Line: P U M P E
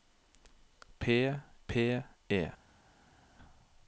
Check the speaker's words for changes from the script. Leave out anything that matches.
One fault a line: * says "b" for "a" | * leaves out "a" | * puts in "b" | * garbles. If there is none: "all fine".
* leaves out "U M"